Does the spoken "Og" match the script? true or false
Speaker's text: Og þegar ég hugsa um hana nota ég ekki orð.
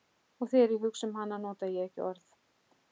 true